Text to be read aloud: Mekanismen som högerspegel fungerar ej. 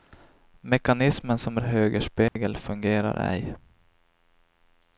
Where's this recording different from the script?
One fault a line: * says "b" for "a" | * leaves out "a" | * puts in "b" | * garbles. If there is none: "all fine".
all fine